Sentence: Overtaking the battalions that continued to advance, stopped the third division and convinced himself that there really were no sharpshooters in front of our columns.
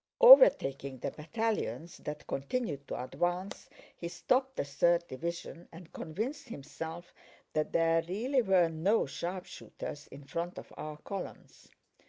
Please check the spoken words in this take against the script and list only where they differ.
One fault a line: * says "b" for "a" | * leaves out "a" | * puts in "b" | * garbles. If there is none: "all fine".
* puts in "he"